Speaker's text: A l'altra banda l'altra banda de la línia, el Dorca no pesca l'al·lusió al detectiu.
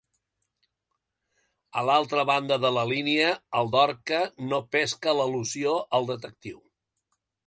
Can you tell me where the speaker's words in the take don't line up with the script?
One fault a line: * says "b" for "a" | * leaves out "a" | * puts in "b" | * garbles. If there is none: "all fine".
* leaves out "l'altra banda"